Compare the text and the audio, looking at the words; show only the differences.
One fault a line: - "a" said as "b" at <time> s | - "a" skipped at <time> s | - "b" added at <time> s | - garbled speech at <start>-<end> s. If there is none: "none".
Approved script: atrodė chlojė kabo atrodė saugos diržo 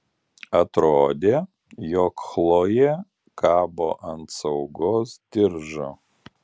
- "jog" added at 1.9 s
- "atrodė" said as "ant" at 4.1 s